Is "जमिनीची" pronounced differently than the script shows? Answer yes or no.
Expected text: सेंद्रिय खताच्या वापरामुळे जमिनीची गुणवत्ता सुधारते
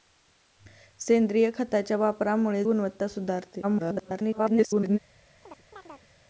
yes